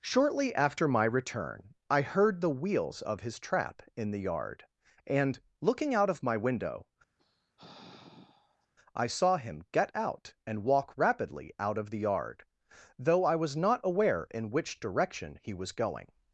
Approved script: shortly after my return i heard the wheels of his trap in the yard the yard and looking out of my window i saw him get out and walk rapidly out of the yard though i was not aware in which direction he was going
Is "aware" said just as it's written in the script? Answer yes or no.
yes